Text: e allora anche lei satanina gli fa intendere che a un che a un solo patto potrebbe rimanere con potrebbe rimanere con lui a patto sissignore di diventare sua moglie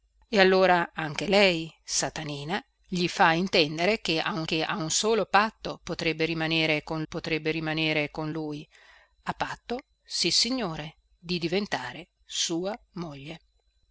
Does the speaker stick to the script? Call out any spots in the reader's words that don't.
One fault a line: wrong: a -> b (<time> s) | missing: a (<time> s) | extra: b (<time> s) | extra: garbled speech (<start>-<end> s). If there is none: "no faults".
no faults